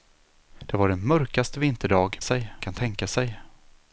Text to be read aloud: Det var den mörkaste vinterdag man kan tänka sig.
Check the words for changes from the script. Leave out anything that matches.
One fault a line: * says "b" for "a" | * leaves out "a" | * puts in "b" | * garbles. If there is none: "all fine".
* says "sig" for "man"